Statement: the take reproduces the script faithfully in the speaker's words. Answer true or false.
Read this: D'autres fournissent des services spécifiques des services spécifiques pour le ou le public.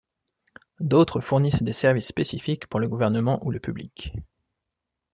false